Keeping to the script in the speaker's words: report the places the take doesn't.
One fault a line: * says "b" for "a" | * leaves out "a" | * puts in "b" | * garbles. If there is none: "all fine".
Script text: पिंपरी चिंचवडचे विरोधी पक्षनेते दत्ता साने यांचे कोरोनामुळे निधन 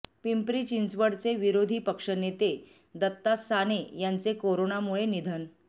all fine